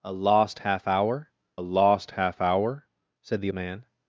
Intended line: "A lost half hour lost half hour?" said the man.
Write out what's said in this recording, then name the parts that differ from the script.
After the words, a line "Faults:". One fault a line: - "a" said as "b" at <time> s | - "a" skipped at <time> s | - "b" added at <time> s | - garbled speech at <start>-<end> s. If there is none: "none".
"A lost half hour lost half hour?" said the man.
Faults:
none